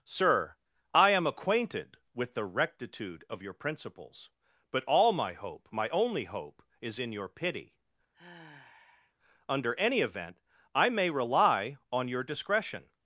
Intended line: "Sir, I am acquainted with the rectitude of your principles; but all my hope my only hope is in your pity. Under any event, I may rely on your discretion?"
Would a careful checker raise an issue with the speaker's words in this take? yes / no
no